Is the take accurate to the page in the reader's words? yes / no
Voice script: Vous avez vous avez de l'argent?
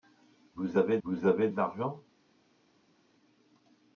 yes